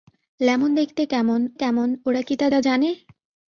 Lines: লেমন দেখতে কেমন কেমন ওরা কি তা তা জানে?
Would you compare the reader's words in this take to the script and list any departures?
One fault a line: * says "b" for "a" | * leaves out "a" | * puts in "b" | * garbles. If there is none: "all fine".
all fine